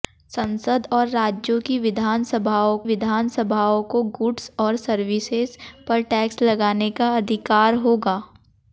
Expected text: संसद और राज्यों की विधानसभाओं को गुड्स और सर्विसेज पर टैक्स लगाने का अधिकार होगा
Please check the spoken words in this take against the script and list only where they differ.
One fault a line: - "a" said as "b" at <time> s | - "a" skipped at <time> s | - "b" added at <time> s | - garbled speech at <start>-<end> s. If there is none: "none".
- "विधानसभाओं" added at 2.8 s